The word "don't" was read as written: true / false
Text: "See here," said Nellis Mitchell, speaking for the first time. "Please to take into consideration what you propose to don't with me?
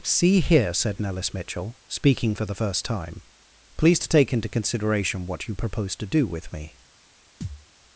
false